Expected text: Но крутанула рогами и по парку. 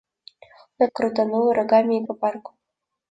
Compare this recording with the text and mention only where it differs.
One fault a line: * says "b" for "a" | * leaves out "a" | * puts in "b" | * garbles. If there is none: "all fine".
all fine